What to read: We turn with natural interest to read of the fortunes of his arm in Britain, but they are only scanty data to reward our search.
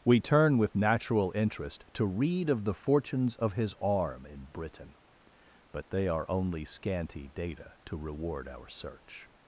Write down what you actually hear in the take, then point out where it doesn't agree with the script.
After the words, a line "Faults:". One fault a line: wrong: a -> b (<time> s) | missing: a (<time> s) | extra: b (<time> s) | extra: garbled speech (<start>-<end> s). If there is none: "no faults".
We turn with natural interest to read of the fortunes of his arm in Britain, but they are only scanty data to reward our search.
Faults:
no faults